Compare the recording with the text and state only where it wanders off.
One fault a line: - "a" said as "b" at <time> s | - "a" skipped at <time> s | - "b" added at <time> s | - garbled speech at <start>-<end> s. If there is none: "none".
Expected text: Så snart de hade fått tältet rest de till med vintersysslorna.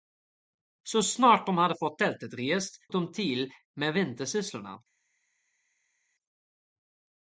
none